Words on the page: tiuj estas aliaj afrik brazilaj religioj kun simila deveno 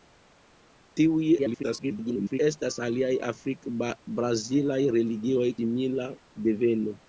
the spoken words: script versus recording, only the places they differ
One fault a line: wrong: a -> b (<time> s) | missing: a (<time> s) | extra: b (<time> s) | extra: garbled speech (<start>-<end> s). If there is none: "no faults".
extra: garbled speech (1.4-2.4 s)
missing: kun (5.5 s)